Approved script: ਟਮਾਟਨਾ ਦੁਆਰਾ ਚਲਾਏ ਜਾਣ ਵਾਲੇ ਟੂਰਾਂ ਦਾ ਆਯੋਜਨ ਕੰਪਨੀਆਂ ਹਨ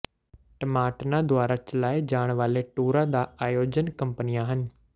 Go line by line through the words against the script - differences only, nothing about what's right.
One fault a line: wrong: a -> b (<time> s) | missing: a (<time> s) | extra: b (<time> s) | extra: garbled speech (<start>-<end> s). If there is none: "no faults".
no faults